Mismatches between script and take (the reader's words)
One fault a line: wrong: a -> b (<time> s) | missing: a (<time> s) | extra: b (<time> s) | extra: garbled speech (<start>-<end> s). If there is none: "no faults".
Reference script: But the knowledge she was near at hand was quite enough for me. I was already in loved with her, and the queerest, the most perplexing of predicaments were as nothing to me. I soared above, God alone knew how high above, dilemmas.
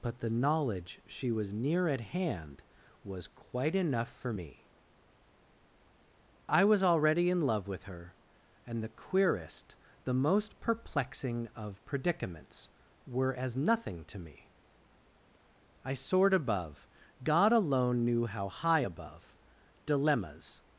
wrong: loved -> love (7.4 s)